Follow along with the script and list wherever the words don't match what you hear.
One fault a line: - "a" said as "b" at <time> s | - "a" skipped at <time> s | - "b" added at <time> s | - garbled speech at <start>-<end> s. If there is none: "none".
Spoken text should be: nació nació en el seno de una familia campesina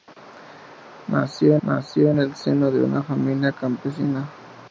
none